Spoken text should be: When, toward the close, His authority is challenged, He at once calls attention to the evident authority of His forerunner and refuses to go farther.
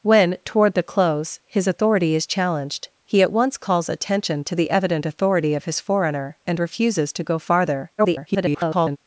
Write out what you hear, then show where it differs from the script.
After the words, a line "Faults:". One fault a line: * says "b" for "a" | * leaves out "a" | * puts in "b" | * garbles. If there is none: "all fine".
When, toward the close, His authority is challenged, He at once calls attention to the evident authority of His forerunner and refuses to go farther. [garbled]
Faults:
* garbles